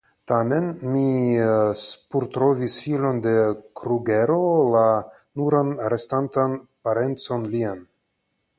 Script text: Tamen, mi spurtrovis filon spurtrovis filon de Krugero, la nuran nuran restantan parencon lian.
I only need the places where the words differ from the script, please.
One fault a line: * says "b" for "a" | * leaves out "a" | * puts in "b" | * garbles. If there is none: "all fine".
* leaves out "spurtrovis filon"
* leaves out "nuran"